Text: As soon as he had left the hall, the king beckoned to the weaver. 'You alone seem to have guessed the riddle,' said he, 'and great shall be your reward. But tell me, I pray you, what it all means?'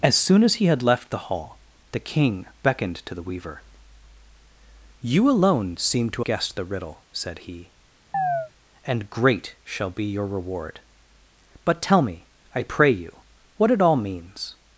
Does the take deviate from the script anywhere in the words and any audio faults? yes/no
yes